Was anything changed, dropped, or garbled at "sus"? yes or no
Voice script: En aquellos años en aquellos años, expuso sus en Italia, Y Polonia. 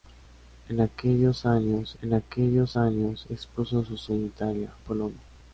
no